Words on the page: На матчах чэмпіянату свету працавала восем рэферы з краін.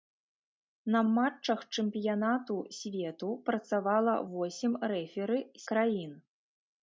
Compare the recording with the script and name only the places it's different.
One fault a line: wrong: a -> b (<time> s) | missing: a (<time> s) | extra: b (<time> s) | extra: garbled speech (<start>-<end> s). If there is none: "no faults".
no faults